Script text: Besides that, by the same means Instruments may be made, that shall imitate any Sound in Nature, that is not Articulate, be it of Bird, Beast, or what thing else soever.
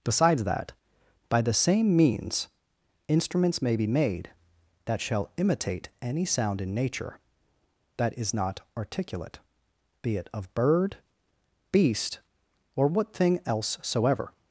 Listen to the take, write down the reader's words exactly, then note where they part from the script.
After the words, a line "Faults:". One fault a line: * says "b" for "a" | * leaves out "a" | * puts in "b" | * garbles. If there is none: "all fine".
Besides that, by the same means Instruments may be made, that shall imitate any Sound in Nature, that is not Articulate, be it of Bird, Beast, or what thing else soever.
Faults:
all fine